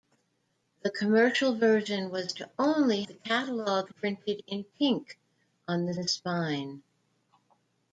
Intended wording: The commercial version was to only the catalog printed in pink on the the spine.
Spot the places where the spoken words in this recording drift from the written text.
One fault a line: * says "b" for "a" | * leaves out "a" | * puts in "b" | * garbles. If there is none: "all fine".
all fine